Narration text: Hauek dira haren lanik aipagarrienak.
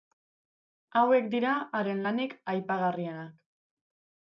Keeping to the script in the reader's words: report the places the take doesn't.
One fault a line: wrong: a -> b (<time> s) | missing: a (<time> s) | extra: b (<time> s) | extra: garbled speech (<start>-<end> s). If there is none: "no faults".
no faults